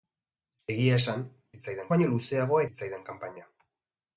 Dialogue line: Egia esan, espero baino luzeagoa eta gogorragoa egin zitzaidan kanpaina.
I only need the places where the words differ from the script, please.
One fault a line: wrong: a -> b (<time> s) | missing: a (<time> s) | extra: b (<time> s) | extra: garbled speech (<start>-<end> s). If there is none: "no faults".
wrong: espero -> zitzaidan (1.6 s)
missing: eta gogorragoa egin (2.6 s)